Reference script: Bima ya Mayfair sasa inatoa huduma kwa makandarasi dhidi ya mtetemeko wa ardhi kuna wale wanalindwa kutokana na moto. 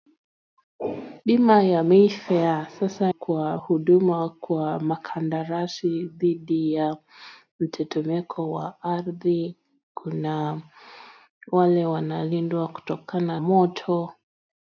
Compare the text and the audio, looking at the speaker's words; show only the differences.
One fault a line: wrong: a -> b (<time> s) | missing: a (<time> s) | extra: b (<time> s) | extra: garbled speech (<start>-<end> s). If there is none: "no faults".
wrong: inatoa -> kwa (3.1 s)
missing: na (13.4 s)